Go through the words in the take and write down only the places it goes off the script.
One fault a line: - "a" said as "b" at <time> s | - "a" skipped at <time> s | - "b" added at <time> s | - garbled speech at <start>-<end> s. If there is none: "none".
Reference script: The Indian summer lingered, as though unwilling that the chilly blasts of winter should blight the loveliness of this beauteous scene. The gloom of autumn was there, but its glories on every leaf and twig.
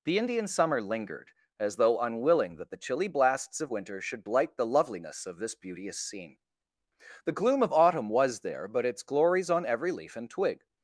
none